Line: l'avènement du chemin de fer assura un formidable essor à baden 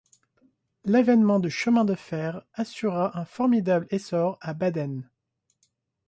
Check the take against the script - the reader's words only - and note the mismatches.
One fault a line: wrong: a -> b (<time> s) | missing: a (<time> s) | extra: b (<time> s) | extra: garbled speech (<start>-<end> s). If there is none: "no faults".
no faults